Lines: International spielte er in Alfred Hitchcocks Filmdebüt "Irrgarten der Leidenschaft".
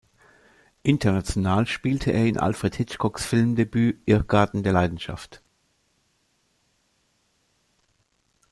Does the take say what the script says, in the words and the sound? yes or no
yes